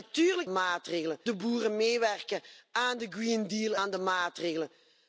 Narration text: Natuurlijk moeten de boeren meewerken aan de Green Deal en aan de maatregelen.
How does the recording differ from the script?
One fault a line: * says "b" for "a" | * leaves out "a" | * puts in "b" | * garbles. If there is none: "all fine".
* says "maatregelen" for "moeten"
* leaves out "en"